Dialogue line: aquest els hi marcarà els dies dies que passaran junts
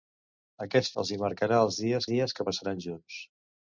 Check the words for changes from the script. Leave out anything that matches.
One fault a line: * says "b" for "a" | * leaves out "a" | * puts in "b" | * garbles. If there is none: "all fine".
all fine